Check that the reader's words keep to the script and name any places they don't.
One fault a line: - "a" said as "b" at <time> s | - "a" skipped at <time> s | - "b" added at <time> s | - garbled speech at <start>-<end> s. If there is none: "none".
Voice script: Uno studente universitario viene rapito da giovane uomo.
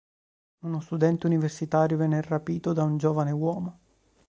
- "un" added at 2.8 s